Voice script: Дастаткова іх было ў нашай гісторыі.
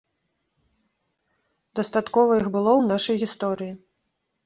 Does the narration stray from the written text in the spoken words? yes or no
no